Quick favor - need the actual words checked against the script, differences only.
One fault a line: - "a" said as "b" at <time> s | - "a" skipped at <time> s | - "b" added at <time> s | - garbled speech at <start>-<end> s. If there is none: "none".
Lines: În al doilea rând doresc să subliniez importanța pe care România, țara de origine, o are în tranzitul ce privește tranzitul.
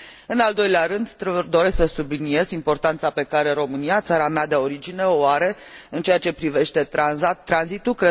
- "mea" added at 4.3 s
- "tranzitul" said as "ceea" at 6.0 s